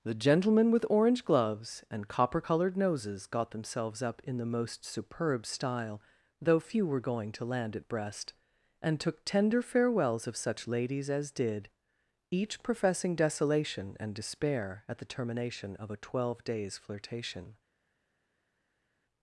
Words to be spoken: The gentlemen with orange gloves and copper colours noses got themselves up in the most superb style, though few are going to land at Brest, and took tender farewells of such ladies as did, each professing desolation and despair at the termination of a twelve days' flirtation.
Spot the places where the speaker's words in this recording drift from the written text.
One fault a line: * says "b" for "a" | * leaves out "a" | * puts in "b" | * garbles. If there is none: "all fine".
* says "coloured" for "colours"
* says "were" for "are"